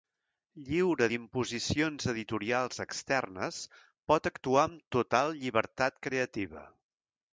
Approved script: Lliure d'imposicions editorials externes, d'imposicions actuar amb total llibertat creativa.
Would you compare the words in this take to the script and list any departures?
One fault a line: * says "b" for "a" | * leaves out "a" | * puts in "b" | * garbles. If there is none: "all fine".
* says "pot" for "d'imposicions"